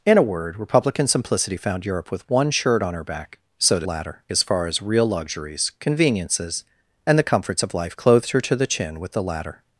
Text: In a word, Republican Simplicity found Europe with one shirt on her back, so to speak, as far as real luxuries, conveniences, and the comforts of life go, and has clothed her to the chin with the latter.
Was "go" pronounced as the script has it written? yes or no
no